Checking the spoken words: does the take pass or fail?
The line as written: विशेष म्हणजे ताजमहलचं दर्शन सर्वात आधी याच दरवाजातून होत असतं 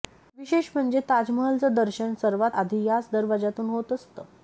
pass